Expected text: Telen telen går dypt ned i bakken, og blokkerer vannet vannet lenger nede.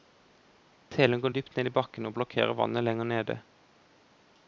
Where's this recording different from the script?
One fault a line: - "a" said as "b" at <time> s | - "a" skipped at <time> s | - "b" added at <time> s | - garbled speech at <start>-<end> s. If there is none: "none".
- "telen" skipped at 1.2 s
- "vannet" skipped at 2.9 s